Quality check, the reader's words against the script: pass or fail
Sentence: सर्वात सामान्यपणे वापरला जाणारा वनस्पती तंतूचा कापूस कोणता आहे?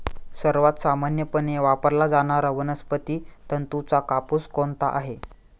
pass